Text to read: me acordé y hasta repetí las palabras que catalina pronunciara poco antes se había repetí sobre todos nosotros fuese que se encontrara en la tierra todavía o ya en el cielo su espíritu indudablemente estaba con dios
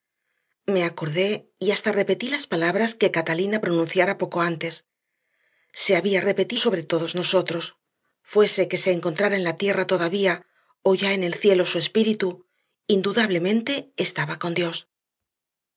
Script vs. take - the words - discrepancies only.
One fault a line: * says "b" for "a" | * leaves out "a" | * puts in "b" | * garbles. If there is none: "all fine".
all fine